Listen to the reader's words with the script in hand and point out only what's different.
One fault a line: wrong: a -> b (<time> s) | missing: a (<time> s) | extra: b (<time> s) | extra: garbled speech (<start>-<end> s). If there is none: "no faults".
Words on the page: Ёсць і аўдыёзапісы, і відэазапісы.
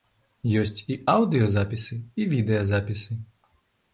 no faults